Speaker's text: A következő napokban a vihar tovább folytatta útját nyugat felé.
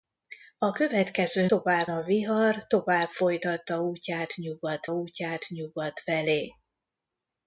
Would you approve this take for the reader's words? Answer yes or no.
no